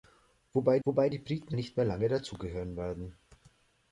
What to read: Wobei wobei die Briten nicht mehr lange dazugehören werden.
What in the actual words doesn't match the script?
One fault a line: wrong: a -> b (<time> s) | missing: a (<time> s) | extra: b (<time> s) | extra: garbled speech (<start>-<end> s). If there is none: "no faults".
no faults